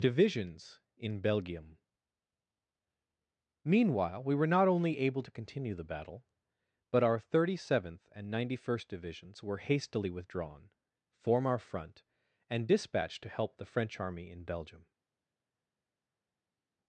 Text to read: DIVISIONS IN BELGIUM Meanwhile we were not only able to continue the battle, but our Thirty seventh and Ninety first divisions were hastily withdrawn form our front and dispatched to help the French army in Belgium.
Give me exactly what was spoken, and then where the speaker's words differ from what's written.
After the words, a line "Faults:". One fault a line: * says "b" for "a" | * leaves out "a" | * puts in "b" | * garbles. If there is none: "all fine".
DIVISIONS IN BELGIUM Meanwhile we were not only able to continue the battle, but our Thirty seventh and Ninety first divisions were hastily withdrawn form our front and dispatched to help the French army in Belgium.
Faults:
all fine